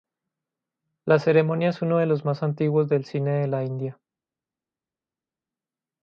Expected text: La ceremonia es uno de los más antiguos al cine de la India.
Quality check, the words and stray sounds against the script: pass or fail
fail